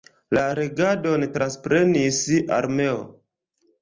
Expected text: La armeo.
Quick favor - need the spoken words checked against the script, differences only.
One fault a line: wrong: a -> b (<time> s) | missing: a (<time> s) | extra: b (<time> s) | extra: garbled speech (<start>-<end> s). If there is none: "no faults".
extra: regadon transprenis (0.5 s)